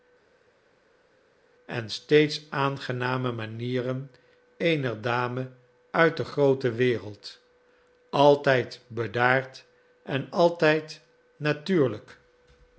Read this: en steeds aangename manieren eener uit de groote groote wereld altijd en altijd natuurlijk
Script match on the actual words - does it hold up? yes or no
no